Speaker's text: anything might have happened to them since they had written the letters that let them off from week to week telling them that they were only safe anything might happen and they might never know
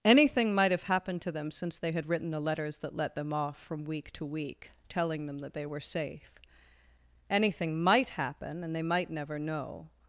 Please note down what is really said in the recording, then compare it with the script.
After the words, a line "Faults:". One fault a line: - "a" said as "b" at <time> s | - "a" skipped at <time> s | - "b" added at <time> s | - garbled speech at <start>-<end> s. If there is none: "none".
anything might have happened to them since they had written the letters that let them off from week to week telling them that they were safe anything might happen and they might never know
Faults:
- "only" skipped at 5.8 s